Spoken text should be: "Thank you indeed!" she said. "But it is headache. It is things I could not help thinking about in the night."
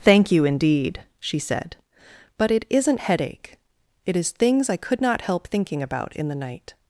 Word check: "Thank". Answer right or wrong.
right